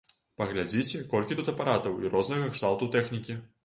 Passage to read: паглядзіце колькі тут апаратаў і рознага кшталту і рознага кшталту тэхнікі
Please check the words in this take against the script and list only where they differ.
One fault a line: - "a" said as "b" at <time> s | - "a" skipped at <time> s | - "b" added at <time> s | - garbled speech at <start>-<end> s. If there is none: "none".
- "і рознага кшталту" skipped at 2.9 s